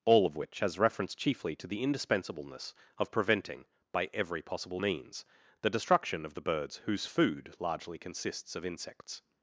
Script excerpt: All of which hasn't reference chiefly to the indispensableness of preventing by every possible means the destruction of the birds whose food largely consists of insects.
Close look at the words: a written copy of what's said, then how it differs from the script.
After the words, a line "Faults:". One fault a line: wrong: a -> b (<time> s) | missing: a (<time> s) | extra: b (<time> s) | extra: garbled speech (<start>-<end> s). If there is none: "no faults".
All of which has reference chiefly to the indispensableness of preventing by every possible means the destruction of the birds whose food largely consists of insects.
Faults:
wrong: hasn't -> has (0.6 s)